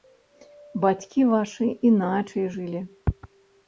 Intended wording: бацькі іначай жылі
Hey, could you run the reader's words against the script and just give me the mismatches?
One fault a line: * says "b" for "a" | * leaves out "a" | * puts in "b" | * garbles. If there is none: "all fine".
* puts in "вашы"